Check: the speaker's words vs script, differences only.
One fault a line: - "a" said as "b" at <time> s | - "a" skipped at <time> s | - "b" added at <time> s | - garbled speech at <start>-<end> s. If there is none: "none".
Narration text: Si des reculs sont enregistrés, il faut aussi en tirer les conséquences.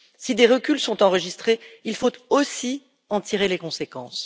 none